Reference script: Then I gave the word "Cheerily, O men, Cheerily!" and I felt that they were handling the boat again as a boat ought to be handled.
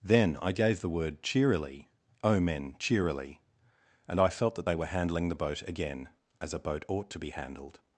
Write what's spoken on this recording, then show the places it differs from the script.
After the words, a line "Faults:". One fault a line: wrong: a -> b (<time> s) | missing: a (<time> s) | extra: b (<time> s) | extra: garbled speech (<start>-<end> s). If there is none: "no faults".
Then I gave the word "Cheerily, O men, Cheerily!" and I felt that they were handling the boat again as a boat ought to be handled.
Faults:
no faults